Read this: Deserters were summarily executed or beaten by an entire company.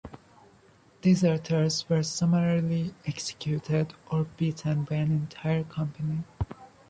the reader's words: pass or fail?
pass